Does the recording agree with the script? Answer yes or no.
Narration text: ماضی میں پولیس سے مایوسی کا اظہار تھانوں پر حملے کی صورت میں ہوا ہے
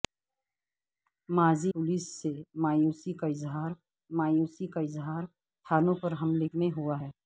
no